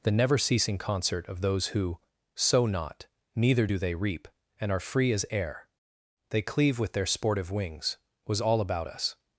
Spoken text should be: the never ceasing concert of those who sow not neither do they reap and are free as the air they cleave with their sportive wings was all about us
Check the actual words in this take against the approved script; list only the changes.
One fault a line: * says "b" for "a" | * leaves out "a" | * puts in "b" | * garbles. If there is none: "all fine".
* leaves out "the"